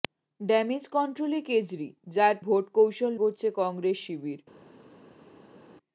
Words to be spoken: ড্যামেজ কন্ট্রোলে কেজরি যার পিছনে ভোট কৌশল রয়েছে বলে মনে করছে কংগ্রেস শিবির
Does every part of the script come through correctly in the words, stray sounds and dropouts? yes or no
no